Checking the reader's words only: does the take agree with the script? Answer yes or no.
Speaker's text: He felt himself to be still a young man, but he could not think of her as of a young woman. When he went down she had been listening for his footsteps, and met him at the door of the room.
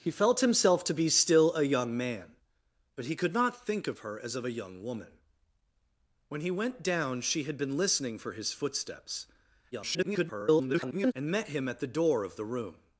no